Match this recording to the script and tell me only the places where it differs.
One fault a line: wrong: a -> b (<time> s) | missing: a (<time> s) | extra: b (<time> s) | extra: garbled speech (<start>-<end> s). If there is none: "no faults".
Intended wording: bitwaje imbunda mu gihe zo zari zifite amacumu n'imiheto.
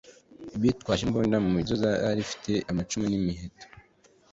missing: gihe (1.6 s)